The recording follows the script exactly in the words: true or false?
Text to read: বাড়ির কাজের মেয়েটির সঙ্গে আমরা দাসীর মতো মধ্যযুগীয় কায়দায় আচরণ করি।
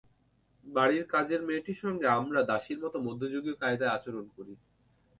true